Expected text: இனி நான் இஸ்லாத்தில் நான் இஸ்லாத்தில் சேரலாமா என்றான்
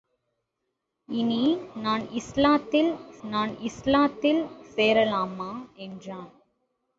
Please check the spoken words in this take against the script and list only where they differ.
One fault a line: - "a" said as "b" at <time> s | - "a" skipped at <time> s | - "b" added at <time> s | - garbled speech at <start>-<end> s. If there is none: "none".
none